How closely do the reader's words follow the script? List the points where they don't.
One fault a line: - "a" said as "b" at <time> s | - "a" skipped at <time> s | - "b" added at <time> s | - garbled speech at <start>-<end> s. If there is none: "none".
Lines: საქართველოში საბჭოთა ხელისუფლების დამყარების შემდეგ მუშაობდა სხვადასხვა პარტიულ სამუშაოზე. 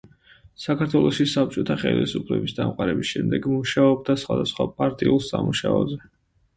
none